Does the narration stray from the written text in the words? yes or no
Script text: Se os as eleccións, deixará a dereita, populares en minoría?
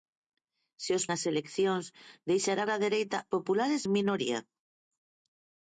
no